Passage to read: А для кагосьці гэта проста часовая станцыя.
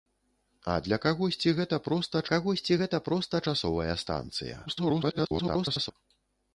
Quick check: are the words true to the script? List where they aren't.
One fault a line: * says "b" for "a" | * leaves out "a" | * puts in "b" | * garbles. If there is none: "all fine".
* puts in "кагосьці гэта проста"
* garbles